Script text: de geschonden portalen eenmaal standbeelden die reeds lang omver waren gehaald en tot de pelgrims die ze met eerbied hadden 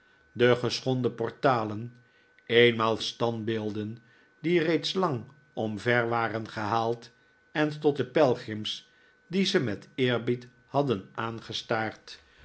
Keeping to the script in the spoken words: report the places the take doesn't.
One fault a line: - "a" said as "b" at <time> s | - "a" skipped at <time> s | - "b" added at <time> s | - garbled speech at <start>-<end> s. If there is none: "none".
none